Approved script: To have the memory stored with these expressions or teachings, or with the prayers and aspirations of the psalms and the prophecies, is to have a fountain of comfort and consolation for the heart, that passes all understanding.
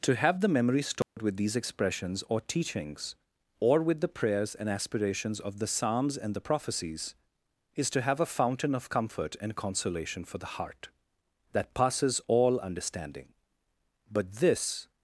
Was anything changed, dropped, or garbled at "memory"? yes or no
no